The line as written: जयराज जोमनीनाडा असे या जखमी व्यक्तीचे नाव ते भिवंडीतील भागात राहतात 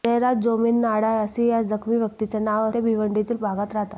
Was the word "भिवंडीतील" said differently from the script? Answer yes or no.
no